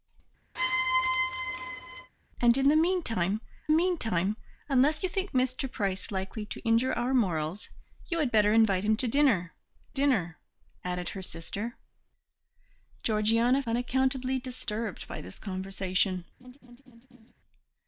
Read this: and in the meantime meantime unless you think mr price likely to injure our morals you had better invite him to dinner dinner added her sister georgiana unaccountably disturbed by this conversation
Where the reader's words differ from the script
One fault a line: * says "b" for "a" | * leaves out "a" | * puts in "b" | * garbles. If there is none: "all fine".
all fine